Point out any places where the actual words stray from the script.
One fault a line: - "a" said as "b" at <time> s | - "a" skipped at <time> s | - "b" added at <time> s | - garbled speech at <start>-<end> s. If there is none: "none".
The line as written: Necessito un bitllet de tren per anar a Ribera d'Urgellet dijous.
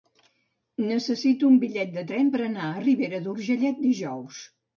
none